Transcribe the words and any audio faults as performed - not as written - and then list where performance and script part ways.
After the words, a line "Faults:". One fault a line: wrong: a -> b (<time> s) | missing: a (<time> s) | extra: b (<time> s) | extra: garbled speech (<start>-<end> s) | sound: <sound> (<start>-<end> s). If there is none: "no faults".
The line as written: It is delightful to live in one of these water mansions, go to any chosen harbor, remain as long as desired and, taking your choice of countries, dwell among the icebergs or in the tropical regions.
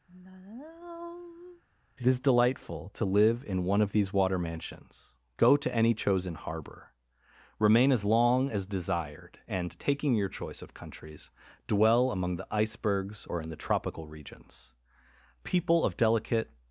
It is delightful to live in one of these water mansions, go to any chosen harbor, remain as long as desired and, taking your choice of countries, dwell among the icebergs or in the tropical regions. People of delicate
Faults:
sound: sigh (0.1-1.6 s)
extra: People of delicate (15.4 s)